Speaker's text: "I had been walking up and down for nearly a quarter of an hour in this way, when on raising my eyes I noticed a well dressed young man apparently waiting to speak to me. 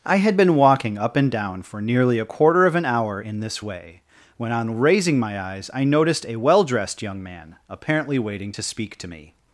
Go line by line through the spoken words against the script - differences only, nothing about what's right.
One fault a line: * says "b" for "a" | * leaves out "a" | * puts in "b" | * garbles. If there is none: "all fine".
all fine